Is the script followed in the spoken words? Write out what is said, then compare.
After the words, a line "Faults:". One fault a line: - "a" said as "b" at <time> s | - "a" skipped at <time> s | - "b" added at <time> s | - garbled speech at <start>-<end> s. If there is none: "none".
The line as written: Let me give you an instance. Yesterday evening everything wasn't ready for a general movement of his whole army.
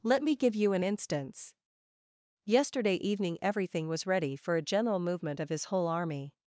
Let me give you an instance. Yesterday evening everything was ready for a general movement of his whole army.
Faults:
- "wasn't" said as "was" at 3.9 s